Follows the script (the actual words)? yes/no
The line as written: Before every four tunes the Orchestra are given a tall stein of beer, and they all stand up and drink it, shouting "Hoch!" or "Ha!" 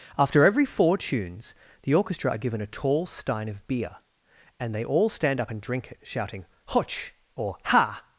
no